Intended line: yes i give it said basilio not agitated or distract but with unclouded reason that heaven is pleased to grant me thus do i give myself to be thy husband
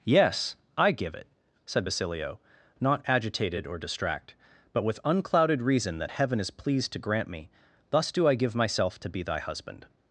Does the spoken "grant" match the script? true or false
true